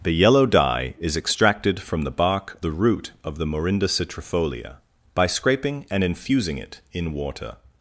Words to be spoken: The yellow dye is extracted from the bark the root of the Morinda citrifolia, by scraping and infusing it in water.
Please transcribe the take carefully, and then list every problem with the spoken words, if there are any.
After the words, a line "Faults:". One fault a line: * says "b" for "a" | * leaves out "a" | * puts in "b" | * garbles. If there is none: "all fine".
The yellow dye is extracted from the bark the root of the Morinda citrifolia, by scraping and infusing it in water.
Faults:
all fine